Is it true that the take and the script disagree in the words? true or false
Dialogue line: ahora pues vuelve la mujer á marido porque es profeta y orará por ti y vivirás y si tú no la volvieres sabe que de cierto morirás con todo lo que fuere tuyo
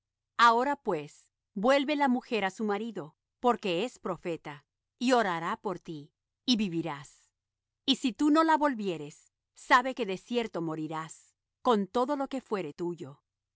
true